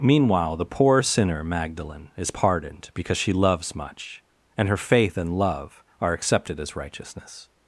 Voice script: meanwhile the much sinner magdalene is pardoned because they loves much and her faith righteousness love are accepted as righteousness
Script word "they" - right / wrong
wrong